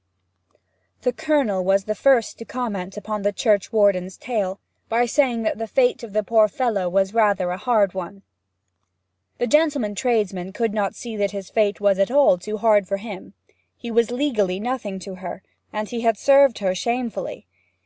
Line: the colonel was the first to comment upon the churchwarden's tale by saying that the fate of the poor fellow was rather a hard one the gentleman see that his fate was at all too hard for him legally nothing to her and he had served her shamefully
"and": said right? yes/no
yes